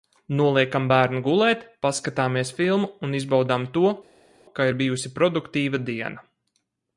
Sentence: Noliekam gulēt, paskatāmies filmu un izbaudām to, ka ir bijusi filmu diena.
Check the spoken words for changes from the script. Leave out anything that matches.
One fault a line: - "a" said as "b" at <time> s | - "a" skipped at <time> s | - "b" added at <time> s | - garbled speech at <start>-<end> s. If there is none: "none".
- "bērnu" added at 0.9 s
- "filmu" said as "produktīva" at 5.2 s